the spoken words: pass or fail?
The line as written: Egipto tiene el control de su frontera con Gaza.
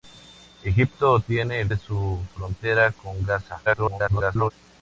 fail